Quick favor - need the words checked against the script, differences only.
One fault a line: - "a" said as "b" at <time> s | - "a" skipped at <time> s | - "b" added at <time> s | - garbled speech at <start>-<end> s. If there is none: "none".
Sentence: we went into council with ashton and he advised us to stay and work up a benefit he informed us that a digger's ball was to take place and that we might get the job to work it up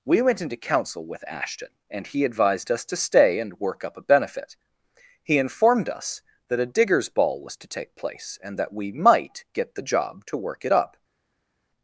none